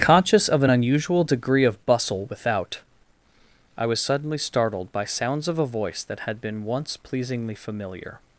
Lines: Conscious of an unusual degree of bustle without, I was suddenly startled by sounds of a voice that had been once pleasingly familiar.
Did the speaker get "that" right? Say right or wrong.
right